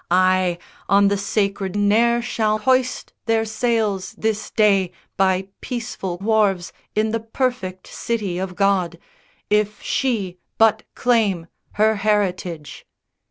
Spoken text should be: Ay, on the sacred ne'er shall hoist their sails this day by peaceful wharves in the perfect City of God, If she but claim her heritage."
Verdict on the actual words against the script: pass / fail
pass